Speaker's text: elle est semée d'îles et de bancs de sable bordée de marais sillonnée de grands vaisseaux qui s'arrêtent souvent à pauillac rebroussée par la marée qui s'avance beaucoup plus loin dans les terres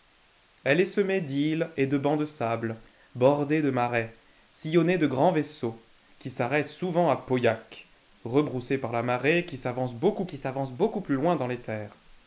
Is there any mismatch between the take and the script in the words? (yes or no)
yes